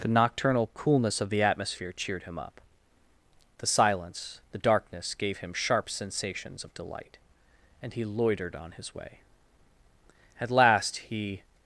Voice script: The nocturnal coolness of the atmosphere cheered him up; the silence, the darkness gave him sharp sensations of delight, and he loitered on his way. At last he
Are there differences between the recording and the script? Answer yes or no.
no